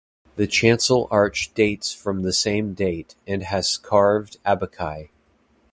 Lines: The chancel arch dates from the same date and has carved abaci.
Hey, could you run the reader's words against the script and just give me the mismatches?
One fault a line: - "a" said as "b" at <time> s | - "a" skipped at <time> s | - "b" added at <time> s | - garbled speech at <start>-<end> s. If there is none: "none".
none